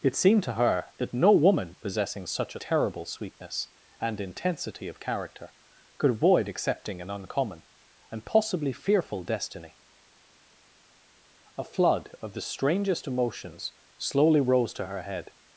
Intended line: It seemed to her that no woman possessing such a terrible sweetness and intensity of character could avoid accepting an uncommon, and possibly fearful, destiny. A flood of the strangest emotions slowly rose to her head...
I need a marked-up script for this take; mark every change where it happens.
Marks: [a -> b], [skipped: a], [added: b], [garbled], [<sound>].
It seemed to her that no woman possessing such a terrible sweetness and intensity of character could avoid accepting an uncommon, and possibly fearful, destiny. A flood of the strangest emotions slowly rose to her head...